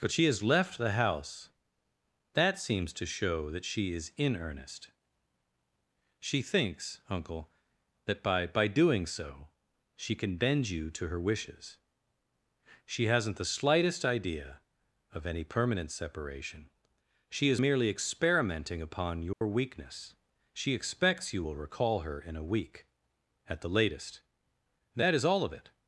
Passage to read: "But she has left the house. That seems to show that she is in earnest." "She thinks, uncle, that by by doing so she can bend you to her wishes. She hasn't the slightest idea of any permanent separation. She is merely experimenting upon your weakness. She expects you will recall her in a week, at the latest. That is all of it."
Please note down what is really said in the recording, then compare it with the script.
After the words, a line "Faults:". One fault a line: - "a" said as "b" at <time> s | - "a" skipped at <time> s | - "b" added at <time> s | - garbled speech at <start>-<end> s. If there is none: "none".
"But she has left the house. That seems to show that she is in earnest." "She thinks, uncle, that by by doing so she can bend you to her wishes. She hasn't the slightest idea of any permanent separation. She is merely experimenting upon your weakness. She expects you will recall her in a week, at the latest. That is all of it."
Faults:
none